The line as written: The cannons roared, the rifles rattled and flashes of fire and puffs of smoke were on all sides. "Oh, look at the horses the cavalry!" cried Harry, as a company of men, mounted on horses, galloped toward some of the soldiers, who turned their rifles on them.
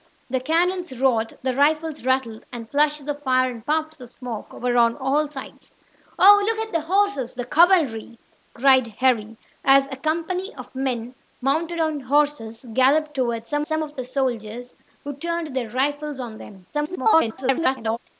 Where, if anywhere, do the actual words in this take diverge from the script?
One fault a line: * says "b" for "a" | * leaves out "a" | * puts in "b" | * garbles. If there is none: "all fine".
* puts in "some"
* garbles